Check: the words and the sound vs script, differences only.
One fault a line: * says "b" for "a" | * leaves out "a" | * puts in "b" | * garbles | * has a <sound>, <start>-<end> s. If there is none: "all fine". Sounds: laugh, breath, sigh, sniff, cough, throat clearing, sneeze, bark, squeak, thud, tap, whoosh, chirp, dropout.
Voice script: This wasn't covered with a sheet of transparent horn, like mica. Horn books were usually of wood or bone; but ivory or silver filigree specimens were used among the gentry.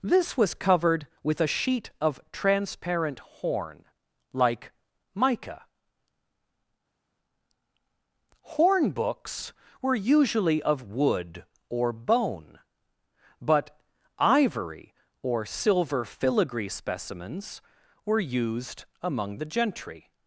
* says "was" for "wasn't"